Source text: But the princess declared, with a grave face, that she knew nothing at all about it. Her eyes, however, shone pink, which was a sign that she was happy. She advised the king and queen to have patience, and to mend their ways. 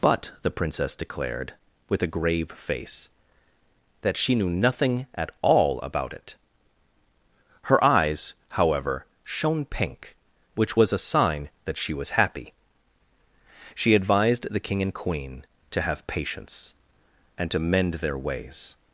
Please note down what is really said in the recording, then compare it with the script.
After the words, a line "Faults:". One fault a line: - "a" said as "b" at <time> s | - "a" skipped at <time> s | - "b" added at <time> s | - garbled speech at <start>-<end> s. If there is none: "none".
But the princess declared, with a grave face, that she knew nothing at all about it. Her eyes, however, shone pink, which was a sign that she was happy. She advised the king and queen to have patience, and to mend their ways.
Faults:
none